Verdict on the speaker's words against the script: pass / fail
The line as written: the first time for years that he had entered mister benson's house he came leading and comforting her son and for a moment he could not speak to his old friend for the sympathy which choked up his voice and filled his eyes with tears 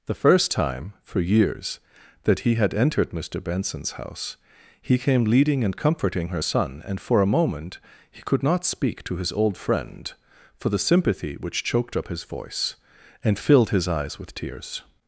pass